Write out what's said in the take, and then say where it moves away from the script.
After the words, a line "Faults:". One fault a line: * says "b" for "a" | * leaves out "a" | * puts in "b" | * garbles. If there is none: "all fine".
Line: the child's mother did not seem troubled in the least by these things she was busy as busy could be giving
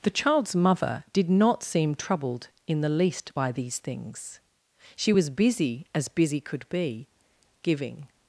the child's mother did not seem troubled in the least by these things she was busy as busy could be giving
Faults:
all fine